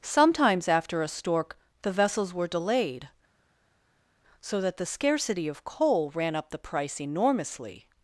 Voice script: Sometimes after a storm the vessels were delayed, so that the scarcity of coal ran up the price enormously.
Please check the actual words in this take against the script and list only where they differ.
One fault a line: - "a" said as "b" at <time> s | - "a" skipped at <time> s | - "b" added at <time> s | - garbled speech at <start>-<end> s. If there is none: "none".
- "storm" said as "stork" at 1.1 s